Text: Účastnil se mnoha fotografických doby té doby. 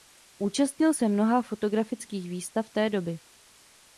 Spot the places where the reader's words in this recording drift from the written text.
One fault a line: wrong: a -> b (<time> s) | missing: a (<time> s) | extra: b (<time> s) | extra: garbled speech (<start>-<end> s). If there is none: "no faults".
wrong: doby -> výstav (2.3 s)